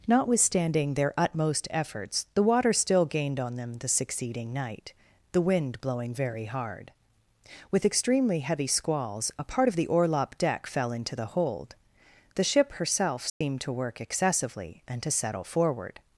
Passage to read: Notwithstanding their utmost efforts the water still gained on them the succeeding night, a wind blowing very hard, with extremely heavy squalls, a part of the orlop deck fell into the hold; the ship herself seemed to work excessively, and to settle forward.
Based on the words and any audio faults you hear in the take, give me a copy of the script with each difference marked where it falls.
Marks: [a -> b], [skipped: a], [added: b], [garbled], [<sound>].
Notwithstanding their utmost efforts the water still gained on them the succeeding night, [a -> the] wind blowing very hard, with extremely heavy squalls, a part of the orlop deck fell into the hold; the ship herself seemed [dropout] to work excessively, and to settle forward.